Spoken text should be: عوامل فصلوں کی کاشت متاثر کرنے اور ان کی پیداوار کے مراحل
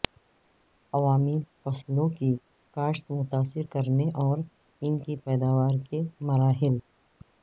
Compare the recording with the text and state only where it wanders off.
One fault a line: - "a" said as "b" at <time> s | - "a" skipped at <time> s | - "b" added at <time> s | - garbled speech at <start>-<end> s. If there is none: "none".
none